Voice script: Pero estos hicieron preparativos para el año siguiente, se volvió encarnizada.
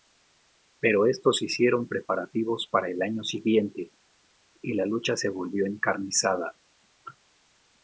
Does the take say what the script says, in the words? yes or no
no